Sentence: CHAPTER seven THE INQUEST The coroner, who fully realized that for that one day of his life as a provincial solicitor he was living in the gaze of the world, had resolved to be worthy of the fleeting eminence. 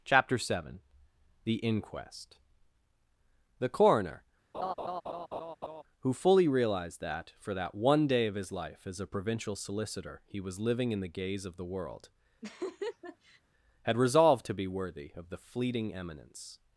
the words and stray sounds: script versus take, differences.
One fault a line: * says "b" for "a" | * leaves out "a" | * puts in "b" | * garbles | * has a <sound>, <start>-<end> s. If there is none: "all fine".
* has a laugh, 4.5-5.8 s
* has a laugh, 12.4-13.4 s